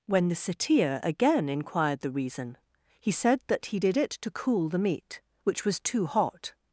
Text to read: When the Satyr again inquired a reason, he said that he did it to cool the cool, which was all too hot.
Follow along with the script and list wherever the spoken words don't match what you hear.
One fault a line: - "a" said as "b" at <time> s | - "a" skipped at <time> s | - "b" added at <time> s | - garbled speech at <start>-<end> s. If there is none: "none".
- "a" said as "the" at 2.0 s
- "cool" said as "meat" at 4.8 s
- "all" skipped at 5.8 s